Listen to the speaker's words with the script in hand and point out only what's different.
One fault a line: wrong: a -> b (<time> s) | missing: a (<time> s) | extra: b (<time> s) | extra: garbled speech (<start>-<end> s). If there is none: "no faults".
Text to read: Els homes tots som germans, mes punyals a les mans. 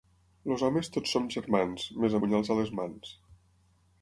no faults